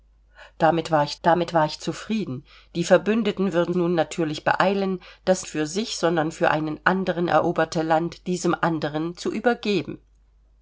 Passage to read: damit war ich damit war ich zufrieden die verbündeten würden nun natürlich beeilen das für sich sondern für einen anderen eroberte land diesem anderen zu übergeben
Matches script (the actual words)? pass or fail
pass